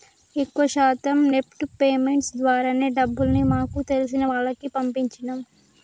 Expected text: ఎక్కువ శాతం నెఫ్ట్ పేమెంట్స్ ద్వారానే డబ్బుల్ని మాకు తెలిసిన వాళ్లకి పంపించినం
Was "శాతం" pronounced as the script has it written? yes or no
yes